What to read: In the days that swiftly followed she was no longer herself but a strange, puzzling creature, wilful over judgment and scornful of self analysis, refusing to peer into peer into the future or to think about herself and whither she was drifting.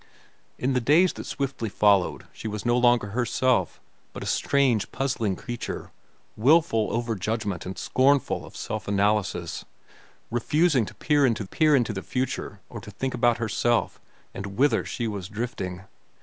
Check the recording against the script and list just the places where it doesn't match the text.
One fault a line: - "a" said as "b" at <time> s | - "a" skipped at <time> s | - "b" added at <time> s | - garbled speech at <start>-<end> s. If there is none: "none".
none